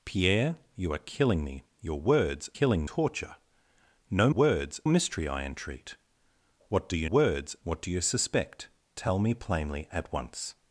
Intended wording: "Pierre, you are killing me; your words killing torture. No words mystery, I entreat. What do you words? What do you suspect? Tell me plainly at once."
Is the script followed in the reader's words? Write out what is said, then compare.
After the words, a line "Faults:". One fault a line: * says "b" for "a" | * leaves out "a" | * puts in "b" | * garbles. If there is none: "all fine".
"Pierre, you are killing me; your words killing torture. No words mystery, I entreat. What do you words? What do you suspect? Tell me plainly at once."
Faults:
all fine